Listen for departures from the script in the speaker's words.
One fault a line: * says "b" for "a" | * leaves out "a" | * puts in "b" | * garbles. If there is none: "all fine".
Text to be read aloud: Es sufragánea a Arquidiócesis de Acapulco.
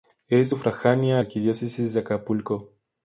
all fine